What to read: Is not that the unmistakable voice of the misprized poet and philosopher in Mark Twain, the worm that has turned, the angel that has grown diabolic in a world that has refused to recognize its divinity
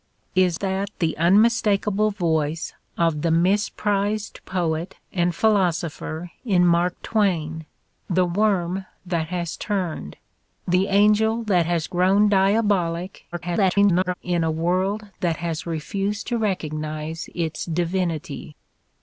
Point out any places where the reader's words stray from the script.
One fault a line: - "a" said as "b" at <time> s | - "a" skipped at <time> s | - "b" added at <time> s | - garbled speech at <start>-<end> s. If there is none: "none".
- "not" skipped at 0.6 s
- garbled speech at 13.3-14.1 s